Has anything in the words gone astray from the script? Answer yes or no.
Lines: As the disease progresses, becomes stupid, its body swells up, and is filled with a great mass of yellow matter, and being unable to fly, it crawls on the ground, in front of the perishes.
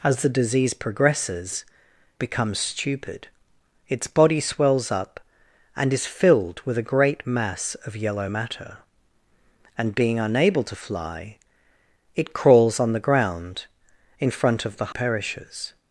no